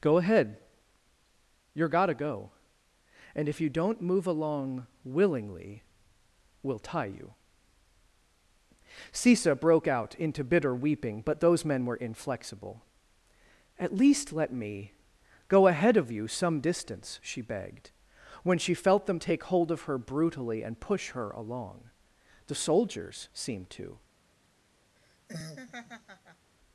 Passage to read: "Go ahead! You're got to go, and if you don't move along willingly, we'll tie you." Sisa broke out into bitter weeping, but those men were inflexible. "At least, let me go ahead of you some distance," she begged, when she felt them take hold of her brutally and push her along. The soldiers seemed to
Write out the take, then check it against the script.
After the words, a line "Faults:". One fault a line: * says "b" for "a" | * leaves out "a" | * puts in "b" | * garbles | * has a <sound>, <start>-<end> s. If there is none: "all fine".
"Go ahead! You're got to go, and if you don't move along willingly, we'll tie you." Sisa broke out into bitter weeping, but those men were inflexible. "At least, let me go ahead of you some distance," she begged, when she felt them take hold of her brutally and push her along. The soldiers seemed to
Faults:
* has a laugh, 25.0-26.5 s